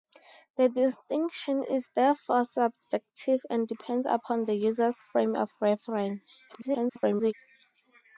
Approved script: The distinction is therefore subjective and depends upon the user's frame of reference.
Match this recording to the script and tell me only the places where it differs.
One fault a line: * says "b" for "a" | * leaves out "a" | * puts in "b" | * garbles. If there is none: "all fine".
* garbles